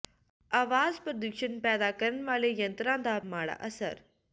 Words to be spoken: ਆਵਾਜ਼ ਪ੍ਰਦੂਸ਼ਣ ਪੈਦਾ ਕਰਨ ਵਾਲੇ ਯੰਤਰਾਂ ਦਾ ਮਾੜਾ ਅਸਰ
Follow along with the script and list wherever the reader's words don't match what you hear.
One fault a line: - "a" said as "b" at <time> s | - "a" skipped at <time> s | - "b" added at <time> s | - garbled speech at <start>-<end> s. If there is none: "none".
none